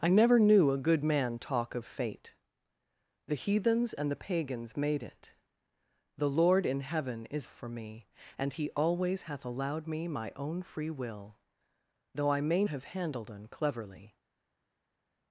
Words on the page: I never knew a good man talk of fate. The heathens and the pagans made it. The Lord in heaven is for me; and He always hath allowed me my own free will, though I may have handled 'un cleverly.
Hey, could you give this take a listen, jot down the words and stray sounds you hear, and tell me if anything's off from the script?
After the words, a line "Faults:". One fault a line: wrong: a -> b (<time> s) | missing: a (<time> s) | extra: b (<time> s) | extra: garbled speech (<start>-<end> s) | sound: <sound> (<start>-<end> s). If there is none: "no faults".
I never knew a good man talk of fate. The heathens and the pagans made it. The Lord in heaven is for me; and He always hath allowed me my own free will, though I may have handled 'un cleverly.
Faults:
no faults